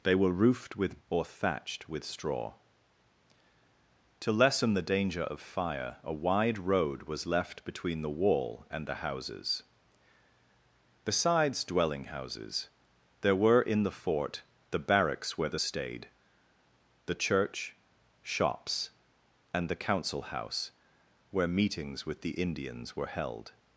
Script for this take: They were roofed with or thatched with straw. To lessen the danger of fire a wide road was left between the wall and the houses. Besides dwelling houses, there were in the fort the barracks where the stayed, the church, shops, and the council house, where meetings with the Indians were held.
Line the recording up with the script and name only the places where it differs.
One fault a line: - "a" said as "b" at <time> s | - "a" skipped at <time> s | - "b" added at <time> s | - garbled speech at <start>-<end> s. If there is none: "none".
none